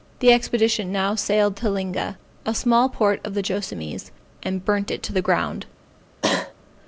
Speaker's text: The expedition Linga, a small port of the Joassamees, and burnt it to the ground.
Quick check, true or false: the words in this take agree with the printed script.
false